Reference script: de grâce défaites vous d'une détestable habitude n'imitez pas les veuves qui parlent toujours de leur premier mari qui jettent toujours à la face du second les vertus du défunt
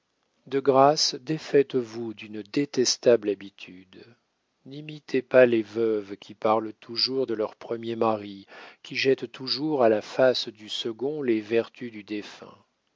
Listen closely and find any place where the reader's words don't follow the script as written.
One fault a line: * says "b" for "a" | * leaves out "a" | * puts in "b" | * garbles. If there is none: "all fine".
all fine